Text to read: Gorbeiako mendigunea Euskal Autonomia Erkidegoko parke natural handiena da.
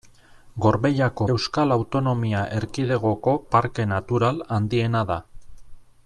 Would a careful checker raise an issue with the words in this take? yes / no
yes